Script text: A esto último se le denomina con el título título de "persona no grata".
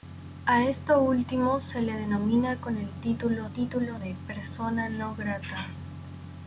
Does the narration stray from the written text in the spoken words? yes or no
no